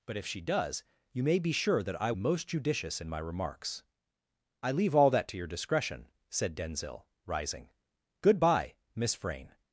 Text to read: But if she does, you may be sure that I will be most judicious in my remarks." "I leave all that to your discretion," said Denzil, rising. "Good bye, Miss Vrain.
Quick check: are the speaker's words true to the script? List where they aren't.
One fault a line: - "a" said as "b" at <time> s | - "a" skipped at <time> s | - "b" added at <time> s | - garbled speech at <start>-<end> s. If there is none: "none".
- "will be" skipped at 2.1 s